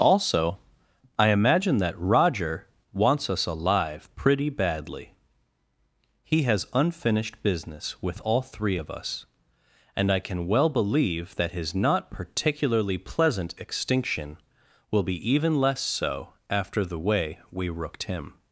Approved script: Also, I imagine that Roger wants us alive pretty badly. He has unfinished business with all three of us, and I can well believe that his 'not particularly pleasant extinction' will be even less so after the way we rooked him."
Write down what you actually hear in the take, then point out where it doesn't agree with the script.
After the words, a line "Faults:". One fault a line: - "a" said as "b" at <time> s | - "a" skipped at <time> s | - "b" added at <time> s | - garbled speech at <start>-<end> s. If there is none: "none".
Also, I imagine that Roger wants us alive pretty badly. He has unfinished business with all three of us, and I can well believe that his 'not particularly pleasant extinction' will be even less so after the way we rooked him."
Faults:
none